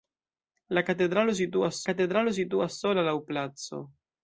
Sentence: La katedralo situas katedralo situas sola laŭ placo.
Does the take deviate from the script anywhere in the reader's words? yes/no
no